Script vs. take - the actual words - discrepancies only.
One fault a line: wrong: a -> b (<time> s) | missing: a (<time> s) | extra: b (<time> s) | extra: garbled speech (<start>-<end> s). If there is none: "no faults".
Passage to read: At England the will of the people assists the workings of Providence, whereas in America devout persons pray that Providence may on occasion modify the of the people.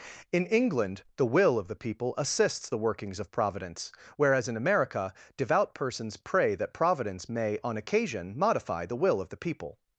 wrong: At -> In (0.3 s)
extra: will (9.0 s)